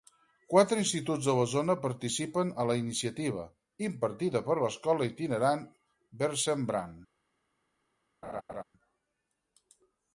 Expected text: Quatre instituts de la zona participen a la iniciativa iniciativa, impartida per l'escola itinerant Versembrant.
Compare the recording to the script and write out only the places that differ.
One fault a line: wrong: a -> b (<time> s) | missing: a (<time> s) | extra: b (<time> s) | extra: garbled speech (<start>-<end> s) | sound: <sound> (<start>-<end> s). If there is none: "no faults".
missing: iniciativa (3.5 s)
sound: laugh (8.2-8.6 s)